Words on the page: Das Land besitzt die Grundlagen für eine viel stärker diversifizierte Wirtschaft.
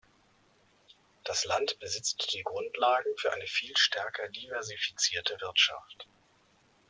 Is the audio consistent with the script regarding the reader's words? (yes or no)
yes